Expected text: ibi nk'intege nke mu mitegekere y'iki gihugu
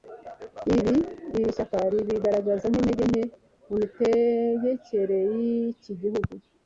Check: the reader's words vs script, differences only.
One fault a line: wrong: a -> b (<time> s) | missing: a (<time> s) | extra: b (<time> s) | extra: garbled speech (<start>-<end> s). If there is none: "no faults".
extra: iri shyaka ribigaragaza (1.4 s)